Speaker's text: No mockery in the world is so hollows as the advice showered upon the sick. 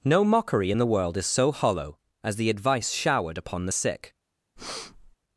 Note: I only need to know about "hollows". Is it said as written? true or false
false